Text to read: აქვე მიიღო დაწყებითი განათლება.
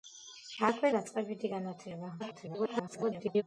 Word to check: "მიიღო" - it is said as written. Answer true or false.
false